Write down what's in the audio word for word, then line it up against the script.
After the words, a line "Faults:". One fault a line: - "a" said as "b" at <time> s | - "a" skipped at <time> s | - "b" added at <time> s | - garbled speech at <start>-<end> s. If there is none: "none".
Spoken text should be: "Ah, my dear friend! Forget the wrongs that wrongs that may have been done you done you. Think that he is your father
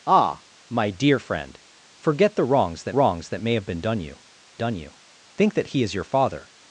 "Ah, my dear friend! Forget the wrongs that wrongs that may have been done you done you. Think that he is your father
Faults:
none